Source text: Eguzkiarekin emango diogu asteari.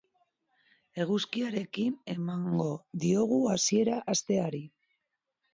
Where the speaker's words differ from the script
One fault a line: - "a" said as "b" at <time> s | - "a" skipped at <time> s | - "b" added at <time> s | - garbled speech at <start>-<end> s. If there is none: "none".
- "hasiera" added at 3.5 s